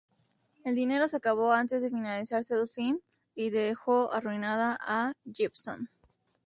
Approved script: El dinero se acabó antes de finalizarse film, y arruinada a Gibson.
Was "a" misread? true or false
false